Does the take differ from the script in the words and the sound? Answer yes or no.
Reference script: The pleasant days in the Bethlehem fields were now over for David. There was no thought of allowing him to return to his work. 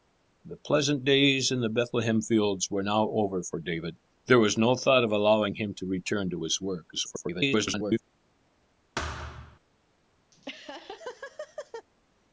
yes